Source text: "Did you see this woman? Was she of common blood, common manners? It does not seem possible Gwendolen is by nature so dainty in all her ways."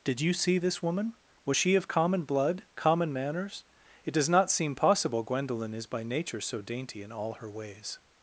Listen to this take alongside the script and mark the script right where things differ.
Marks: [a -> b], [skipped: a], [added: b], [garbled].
"Did you see this woman? Was she of common blood, common manners? It does not seem possible Gwendolen is by nature so dainty in all her ways."